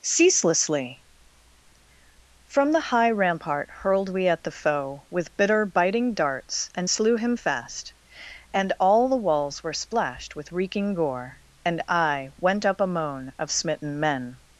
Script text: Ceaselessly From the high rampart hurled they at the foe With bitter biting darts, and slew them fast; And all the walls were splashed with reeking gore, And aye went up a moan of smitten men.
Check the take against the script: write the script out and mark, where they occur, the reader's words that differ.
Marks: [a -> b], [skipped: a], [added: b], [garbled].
Ceaselessly From the high rampart hurled [they -> we] at the foe With bitter biting darts, and slew [them -> him] fast; And all the walls were splashed with reeking gore, And aye went up a moan of smitten men.